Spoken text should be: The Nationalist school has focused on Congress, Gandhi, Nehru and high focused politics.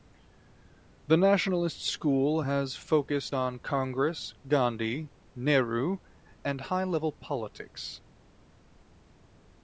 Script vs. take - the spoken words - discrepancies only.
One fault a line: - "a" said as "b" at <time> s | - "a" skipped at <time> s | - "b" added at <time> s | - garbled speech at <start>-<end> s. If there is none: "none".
- "focused" said as "level" at 6.8 s